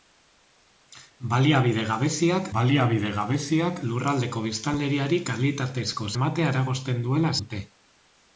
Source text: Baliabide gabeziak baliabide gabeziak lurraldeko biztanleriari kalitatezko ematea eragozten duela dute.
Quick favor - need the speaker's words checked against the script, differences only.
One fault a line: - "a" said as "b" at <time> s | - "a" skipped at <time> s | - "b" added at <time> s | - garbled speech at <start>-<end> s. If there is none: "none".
none